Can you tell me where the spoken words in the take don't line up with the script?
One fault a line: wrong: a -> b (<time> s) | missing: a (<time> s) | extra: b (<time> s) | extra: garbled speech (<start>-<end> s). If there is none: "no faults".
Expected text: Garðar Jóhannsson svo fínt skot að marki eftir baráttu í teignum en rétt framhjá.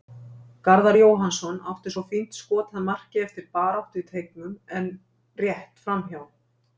extra: átti (1.7 s)